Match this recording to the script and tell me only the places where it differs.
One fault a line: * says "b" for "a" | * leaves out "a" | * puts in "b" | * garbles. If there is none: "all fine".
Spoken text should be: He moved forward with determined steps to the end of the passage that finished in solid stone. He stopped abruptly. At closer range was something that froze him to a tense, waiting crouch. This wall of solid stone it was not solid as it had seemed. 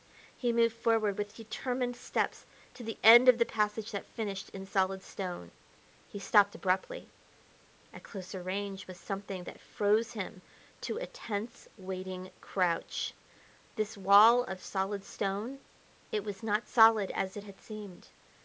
all fine